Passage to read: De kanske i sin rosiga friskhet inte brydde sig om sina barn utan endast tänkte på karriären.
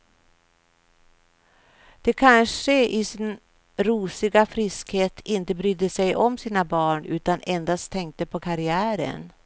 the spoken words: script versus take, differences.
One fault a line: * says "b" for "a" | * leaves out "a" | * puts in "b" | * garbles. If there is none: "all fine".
all fine